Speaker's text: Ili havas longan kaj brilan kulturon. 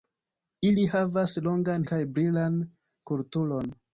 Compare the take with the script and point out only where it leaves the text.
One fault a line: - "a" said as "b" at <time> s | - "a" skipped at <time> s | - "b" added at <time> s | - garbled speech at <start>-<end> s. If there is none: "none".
none